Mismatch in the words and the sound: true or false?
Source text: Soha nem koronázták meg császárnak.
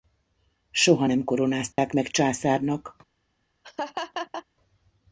true